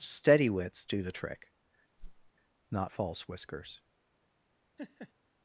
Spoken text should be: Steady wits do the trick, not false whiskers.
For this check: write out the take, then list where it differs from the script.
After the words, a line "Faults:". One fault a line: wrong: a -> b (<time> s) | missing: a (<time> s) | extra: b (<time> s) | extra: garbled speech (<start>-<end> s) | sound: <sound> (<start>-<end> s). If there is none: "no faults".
Steady wits do the trick, not false whiskers.
Faults:
sound: whoosh (2.0-2.3 s)
sound: laugh (4.8-5.1 s)